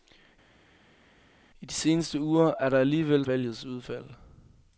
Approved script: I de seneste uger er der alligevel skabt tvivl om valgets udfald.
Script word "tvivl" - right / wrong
wrong